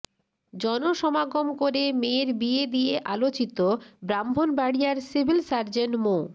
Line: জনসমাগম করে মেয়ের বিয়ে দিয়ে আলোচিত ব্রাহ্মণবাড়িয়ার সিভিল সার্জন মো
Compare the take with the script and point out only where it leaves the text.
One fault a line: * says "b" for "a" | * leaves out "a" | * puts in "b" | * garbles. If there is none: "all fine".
all fine